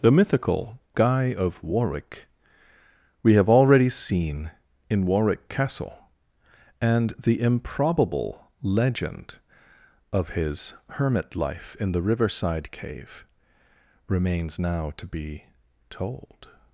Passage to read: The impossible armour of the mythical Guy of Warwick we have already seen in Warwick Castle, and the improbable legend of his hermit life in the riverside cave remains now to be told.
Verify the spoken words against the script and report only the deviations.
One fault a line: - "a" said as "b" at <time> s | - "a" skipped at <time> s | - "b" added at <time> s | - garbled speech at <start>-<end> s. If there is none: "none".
- "impossible armour of the" skipped at 0.1 s